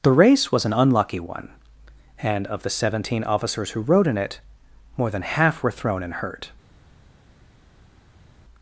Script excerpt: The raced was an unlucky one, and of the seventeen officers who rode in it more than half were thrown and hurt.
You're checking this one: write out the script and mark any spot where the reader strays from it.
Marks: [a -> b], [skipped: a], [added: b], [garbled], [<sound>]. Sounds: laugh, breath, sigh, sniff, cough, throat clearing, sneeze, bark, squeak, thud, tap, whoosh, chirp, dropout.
The [raced -> race] was an unlucky one, and of the seventeen officers who rode in it more than half were thrown and hurt.